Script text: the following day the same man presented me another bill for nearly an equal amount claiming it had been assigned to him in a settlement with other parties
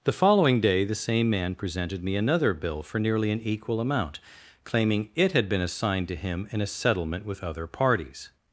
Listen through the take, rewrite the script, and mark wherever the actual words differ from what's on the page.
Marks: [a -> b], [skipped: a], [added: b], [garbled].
the following day the same man presented me another bill for nearly an equal amount claiming it had been assigned to him in a settlement with other parties